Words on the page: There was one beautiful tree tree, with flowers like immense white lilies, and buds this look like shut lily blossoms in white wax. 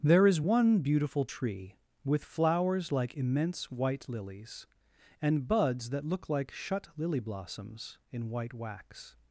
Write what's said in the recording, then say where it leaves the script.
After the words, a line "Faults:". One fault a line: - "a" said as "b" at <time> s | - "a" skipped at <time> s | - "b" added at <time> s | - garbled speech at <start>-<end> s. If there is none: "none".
There is one beautiful tree, with flowers like immense white lilies, and buds that look like shut lily blossoms in white wax.
Faults:
- "was" said as "is" at 0.2 s
- "tree" skipped at 1.7 s
- "this" said as "that" at 5.9 s